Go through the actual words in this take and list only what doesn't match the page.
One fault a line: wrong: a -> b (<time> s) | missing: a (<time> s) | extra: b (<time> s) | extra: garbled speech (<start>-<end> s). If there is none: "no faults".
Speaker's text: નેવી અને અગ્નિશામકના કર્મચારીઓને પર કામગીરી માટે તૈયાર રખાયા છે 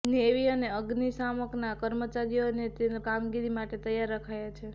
missing: પર (2.7 s)